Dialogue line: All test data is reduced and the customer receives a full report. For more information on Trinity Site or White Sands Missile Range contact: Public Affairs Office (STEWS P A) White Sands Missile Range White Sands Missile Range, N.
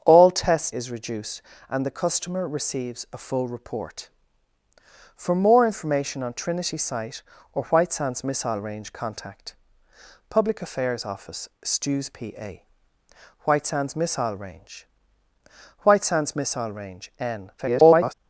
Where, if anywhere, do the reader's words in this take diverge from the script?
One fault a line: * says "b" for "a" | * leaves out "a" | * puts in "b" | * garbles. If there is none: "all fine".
* leaves out "data"
* garbles